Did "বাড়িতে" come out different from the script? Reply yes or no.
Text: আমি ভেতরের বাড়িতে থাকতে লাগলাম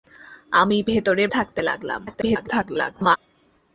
yes